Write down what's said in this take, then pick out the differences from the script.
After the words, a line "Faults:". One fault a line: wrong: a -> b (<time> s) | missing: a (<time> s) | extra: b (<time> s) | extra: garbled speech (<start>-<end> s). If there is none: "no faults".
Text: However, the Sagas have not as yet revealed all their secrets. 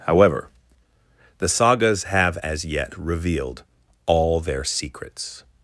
However, the Sagas have as yet revealed all their secrets.
Faults:
missing: not (2.4 s)